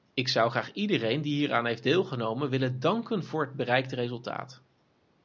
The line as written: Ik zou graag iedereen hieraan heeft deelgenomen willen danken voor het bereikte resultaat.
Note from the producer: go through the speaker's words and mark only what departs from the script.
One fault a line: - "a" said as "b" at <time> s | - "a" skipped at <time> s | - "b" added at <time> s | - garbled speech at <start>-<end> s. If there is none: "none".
- "die" added at 1.2 s